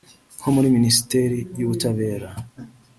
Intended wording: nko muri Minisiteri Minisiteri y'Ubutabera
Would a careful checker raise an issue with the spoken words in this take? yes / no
yes